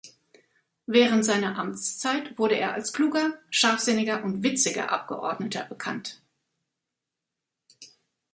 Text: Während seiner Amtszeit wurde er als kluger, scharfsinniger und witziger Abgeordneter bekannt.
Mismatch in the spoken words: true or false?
false